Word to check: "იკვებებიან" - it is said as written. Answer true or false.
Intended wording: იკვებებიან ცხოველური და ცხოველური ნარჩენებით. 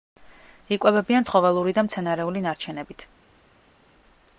true